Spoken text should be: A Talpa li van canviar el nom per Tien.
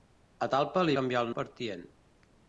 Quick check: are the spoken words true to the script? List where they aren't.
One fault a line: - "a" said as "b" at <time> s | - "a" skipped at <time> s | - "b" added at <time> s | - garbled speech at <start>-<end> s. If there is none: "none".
- "van" skipped at 0.9 s
- "nom" skipped at 1.3 s